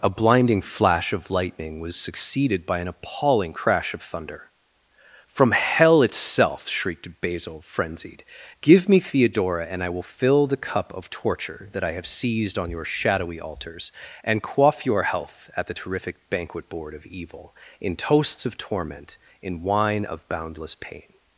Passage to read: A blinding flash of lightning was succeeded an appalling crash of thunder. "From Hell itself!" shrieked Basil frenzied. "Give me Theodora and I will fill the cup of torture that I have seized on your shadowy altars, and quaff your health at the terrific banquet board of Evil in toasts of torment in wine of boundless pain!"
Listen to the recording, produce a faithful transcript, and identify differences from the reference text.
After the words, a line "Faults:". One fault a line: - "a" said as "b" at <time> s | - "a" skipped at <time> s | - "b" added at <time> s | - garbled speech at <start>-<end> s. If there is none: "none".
A blinding flash of lightning was succeeded by an appalling crash of thunder. "From Hell itself!" shrieked Basil frenzied. "Give me Theodora and I will fill the cup of torture that I have seized on your shadowy altars, and quaff your health at the terrific banquet board of Evil in toasts of torment in wine of boundless pain!"
Faults:
- "by" added at 2.6 s